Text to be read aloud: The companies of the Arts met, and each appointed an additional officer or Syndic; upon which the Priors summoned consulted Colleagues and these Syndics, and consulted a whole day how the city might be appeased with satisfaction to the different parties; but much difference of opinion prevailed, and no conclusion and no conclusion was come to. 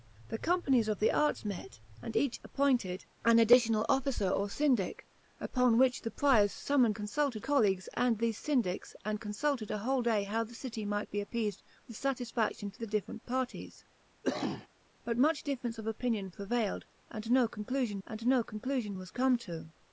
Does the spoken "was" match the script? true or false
true